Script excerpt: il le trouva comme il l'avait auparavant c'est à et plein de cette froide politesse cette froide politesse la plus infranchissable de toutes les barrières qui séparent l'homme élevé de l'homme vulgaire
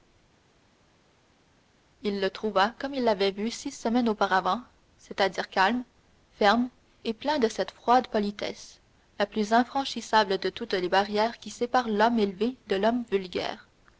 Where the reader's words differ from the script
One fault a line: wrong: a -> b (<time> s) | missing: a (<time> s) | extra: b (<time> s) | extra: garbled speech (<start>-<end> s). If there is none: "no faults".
extra: vu six semaines (3.3 s)
extra: dire calme ferme (5.3 s)
missing: cette froide politesse (8.8 s)